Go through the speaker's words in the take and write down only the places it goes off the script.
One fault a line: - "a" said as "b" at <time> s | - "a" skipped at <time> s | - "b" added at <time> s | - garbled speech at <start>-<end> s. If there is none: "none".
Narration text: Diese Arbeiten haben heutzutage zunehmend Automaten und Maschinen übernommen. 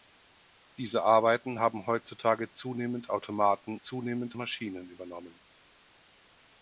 - "und" said as "zunehmend" at 3.8 s